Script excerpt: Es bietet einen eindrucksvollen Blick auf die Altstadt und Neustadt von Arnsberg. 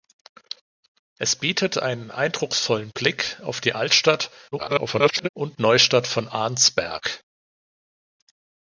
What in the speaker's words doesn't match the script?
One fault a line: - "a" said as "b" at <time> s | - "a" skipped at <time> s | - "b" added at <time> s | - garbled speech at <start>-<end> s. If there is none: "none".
- garbled speech at 4.5-5.3 s